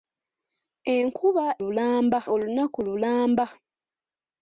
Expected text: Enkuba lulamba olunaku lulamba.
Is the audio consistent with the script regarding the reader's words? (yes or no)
yes